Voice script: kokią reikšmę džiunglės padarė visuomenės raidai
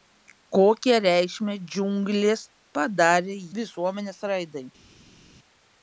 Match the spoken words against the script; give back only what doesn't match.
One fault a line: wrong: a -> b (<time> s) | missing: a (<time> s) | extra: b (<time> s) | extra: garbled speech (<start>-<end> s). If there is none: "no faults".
no faults